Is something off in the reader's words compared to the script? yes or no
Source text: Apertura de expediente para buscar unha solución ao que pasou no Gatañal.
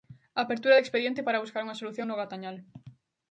yes